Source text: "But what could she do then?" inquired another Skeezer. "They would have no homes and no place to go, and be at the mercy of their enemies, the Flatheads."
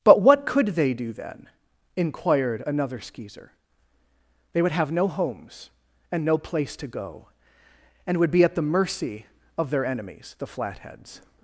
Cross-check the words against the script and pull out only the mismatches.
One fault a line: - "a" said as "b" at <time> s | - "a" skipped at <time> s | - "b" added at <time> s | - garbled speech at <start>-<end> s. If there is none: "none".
- "she" said as "they" at 0.7 s
- "would" added at 8.2 s